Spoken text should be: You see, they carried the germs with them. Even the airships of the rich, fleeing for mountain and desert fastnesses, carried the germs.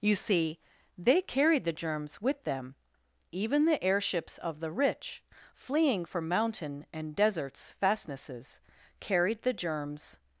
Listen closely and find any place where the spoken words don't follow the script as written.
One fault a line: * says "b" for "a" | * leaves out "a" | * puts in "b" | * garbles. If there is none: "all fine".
* says "deserts" for "desert"